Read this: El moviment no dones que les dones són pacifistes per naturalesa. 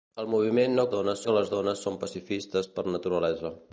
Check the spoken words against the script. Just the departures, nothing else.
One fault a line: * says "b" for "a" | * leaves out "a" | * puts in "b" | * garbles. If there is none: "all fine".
all fine